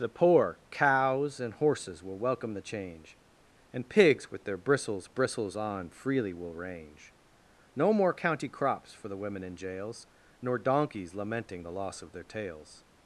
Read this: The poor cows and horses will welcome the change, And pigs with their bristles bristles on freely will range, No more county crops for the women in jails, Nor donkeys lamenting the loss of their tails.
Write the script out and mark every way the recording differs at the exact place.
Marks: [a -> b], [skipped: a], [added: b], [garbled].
The poor cows and horses will welcome the change, And pigs with their bristles bristles on freely will range, No more county crops for the women in jails, Nor donkeys lamenting the loss of their tails.